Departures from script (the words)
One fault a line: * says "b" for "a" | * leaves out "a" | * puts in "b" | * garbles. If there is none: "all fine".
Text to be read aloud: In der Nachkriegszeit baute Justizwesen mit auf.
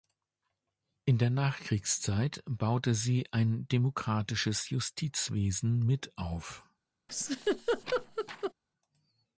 * puts in "sie ein demokratisches"